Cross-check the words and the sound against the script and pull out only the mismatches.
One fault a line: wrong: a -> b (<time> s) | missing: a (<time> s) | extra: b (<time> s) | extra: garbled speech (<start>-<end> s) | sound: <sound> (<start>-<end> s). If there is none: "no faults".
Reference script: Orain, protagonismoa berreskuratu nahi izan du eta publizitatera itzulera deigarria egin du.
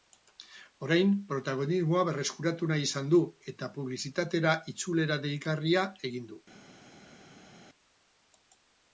no faults